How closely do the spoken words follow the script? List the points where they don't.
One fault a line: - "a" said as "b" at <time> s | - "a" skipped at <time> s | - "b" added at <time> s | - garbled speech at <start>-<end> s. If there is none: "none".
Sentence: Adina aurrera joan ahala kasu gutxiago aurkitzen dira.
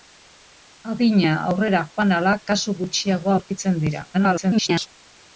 - garbled speech at 4.1-4.9 s